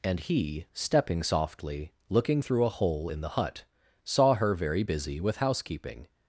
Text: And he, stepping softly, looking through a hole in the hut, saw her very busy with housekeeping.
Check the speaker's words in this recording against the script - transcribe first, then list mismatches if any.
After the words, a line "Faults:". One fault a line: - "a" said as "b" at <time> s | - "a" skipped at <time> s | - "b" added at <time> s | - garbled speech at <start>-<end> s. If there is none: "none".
And he, stepping softly, looking through a hole in the hut, saw her very busy with housekeeping.
Faults:
none